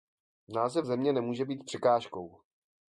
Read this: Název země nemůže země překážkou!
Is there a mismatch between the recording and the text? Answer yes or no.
yes